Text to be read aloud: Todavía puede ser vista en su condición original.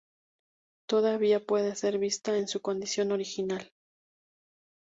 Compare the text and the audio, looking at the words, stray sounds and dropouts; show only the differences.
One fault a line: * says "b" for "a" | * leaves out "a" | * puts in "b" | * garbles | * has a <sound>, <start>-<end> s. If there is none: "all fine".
all fine